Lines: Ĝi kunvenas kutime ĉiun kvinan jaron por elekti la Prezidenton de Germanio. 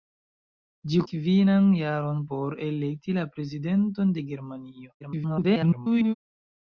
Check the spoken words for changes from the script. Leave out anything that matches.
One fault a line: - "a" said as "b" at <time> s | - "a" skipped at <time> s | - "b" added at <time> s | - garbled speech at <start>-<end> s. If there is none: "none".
- "kunvenas kutime ĉiun" skipped at 1.0 s
- garbled speech at 5.0-6.1 s